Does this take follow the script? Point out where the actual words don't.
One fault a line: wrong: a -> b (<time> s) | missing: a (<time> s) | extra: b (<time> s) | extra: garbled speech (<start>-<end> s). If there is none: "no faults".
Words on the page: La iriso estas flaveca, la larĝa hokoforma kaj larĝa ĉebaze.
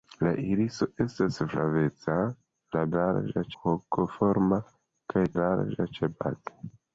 no faults